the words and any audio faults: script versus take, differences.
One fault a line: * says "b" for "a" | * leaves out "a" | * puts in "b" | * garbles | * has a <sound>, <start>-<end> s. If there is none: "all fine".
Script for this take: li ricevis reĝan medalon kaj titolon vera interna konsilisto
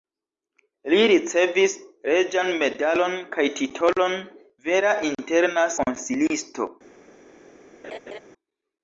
* has a laugh, 7.8-8.2 s